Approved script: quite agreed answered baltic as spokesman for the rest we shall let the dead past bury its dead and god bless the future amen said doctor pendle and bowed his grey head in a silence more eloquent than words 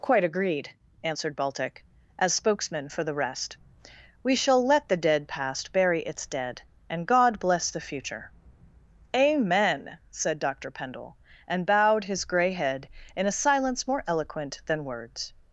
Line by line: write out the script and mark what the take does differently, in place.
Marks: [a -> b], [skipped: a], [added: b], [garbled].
quite agreed answered baltic as spokesman for the rest we shall let the dead past bury its dead and god bless the future amen said doctor pendle and bowed his grey head in a silence more eloquent than words